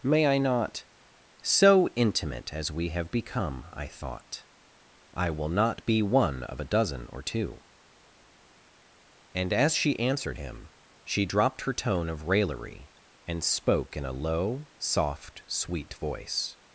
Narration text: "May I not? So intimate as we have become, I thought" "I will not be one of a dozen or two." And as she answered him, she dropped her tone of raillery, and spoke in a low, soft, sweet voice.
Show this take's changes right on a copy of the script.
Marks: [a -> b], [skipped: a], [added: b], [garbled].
"May I not? So intimate as we have become, I thought" "I will not be one of a dozen or two." And as she answered him, she dropped her tone of raillery, and spoke in a low, soft, sweet voice.